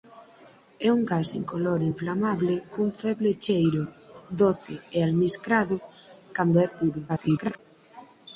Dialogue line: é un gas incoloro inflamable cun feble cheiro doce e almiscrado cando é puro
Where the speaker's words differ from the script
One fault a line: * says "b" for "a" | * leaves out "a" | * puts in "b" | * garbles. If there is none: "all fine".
* garbles